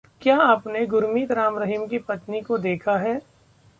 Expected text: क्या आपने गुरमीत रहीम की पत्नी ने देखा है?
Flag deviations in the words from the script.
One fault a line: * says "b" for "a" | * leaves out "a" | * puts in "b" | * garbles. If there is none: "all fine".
* puts in "राम"
* says "को" for "ने"